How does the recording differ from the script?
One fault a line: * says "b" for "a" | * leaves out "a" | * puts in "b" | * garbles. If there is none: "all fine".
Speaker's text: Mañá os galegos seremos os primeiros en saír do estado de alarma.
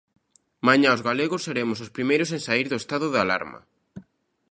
all fine